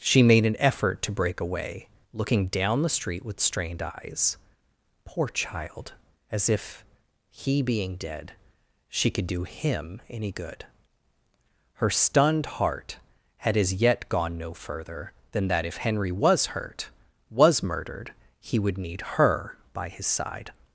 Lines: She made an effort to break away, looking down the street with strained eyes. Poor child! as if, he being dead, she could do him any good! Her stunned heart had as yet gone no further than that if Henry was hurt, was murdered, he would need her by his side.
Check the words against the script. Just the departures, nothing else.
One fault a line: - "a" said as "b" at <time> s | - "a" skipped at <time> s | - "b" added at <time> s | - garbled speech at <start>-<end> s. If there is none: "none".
none